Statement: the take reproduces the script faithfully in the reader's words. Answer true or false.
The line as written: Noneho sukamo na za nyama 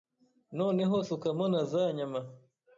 true